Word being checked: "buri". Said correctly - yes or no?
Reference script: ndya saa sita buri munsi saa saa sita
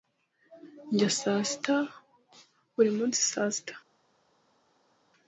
yes